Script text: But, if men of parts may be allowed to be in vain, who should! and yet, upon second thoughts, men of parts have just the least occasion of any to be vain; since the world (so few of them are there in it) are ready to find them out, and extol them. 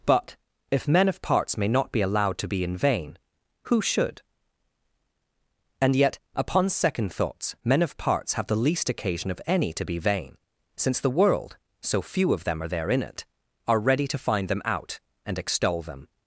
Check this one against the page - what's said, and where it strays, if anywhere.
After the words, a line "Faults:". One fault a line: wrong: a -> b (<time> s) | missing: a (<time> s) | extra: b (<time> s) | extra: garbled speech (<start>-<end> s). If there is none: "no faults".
But, if men of parts may not be allowed to be in vain, who should! and yet, upon second thoughts, men of parts have the least occasion of any to be vain; since the world (so few of them are there in it) are ready to find them out, and extol them.
Faults:
extra: not (1.7 s)
missing: just (8.5 s)